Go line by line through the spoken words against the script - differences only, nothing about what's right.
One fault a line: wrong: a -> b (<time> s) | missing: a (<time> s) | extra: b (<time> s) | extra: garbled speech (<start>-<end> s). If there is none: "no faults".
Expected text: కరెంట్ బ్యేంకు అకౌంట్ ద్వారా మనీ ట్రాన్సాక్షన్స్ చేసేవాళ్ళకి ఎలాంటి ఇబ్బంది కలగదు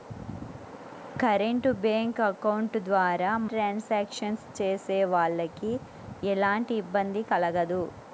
missing: మనీ (3.3 s)